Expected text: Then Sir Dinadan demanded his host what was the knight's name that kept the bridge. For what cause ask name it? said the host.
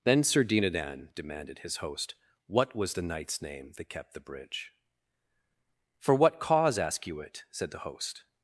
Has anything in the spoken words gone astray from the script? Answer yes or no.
yes